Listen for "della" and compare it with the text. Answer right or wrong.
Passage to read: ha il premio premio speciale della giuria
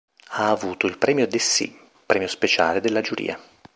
right